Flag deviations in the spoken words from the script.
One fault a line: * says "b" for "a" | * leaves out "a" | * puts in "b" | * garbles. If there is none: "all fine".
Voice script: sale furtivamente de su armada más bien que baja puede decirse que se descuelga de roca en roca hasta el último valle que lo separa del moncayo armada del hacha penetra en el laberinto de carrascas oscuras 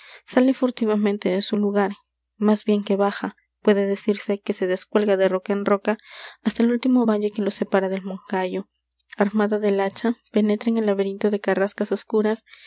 * says "lugar" for "armada"